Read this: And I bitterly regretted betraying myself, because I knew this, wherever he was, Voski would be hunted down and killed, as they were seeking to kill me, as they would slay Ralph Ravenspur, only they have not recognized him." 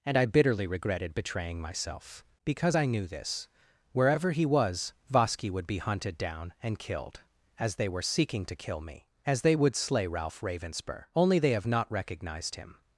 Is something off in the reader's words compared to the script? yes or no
no